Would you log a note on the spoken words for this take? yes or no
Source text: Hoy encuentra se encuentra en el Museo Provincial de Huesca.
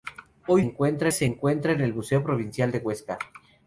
no